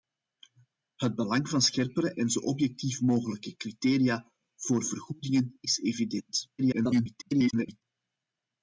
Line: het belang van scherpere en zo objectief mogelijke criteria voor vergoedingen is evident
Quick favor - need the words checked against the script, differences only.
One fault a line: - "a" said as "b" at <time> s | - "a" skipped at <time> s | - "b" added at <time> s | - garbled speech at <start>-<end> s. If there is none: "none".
- garbled speech at 6.6-7.8 s